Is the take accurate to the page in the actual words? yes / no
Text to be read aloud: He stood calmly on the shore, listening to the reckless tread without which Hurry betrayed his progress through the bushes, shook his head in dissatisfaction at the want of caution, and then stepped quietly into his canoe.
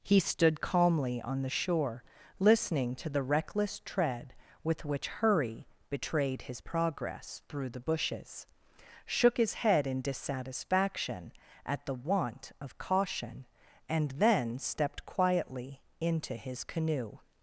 no